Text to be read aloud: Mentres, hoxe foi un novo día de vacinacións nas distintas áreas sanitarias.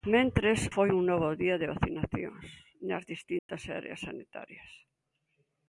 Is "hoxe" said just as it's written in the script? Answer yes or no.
no